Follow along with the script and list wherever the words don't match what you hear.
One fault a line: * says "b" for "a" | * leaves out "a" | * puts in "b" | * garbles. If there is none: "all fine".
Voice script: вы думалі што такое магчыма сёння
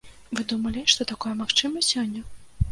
all fine